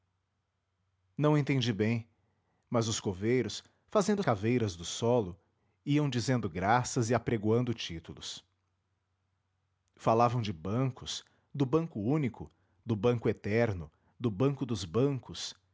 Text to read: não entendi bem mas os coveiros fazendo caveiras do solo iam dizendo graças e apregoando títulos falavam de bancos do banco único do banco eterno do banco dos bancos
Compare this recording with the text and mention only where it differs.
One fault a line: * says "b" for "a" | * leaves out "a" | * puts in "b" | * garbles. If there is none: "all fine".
all fine